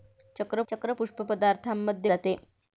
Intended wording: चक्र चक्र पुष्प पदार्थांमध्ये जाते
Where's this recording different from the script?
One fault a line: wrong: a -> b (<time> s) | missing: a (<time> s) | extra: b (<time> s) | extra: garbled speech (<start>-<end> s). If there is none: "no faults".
no faults